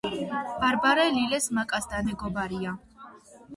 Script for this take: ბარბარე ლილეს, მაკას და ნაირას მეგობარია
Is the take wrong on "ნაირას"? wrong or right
wrong